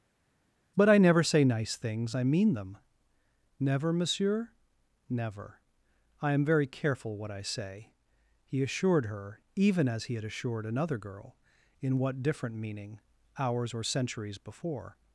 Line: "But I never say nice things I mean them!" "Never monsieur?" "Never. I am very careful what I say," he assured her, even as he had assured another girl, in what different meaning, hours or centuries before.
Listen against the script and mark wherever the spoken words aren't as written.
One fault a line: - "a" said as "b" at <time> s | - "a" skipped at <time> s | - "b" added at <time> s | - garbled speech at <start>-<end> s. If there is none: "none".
none